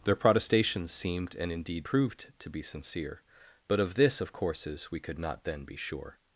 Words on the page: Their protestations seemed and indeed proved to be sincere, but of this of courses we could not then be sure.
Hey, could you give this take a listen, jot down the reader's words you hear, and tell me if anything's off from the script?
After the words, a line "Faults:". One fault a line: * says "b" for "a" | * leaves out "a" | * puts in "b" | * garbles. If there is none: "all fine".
Their protestations seemed and indeed proved to be sincere, but of this of courses we could not then be sure.
Faults:
all fine